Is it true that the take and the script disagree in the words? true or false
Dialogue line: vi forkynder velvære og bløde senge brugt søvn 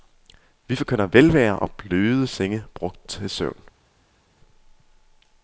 true